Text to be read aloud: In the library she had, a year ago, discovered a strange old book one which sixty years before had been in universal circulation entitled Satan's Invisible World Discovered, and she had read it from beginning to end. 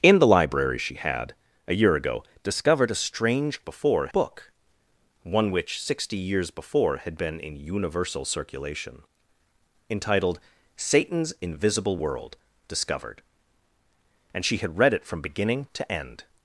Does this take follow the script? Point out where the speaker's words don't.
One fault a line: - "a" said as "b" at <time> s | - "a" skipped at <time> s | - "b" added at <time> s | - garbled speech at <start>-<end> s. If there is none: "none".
- "old" said as "before" at 3.6 s